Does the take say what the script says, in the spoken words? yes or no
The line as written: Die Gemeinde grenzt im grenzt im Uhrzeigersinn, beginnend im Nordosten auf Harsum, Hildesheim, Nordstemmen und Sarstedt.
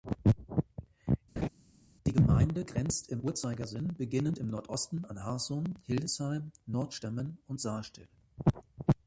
no